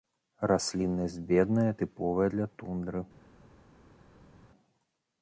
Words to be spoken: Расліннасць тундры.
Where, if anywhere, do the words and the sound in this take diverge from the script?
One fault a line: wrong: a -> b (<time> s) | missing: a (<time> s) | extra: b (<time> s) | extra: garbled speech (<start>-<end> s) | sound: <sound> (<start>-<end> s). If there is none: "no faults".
extra: бедная тыповая для (1.3 s)